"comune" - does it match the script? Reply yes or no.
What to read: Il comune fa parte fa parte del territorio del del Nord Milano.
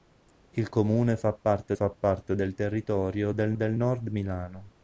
yes